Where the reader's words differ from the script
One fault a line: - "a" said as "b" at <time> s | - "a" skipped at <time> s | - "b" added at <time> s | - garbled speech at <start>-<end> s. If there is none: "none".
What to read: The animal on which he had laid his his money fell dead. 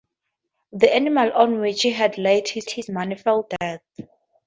none